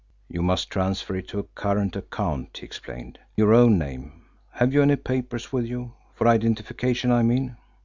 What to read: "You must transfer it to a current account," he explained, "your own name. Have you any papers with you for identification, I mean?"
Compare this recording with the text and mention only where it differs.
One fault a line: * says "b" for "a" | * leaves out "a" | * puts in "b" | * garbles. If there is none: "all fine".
all fine